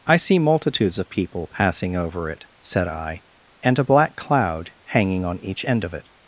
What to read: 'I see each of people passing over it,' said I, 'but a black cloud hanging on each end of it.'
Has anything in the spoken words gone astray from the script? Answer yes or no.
yes